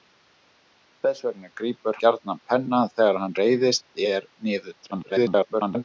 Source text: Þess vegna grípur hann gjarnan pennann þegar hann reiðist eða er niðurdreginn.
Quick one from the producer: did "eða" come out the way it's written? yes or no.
no